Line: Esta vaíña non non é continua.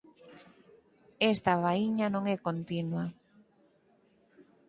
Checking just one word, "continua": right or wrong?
right